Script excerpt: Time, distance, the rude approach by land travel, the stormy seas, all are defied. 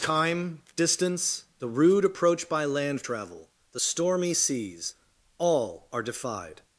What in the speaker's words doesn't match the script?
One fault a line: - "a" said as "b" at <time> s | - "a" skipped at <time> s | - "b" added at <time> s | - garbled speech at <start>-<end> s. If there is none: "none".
none